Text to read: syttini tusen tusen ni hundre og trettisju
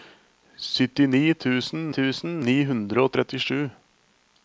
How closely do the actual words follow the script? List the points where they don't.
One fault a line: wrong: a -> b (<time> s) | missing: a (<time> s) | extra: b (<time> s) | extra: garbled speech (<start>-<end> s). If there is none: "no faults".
no faults